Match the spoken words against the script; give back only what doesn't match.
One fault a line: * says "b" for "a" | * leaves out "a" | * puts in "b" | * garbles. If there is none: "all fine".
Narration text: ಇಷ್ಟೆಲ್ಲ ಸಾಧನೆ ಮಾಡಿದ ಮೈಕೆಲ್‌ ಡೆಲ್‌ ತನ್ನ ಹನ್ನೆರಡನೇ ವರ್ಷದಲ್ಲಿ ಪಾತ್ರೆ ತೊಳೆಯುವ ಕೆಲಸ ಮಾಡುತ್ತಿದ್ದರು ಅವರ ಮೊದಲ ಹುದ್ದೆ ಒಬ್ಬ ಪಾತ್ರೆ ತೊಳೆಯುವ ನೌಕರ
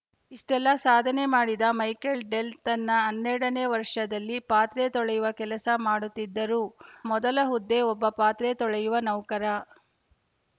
* leaves out "ಅವರ"